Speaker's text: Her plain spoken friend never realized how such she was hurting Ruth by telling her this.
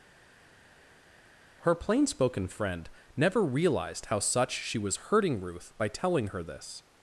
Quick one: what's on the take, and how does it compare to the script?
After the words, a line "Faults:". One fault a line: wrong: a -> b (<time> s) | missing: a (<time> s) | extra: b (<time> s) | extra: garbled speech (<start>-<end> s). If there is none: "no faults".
Her plain spoken friend never realized how such she was hurting Ruth by telling her this.
Faults:
no faults